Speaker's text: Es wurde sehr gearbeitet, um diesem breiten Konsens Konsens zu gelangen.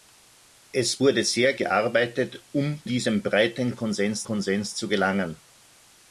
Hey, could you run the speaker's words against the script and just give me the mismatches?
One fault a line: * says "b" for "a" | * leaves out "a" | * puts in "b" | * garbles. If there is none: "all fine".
all fine